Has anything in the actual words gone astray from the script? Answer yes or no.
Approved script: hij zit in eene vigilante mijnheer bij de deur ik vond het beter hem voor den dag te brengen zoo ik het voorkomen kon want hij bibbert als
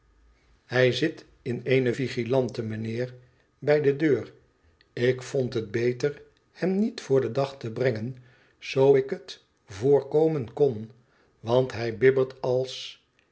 yes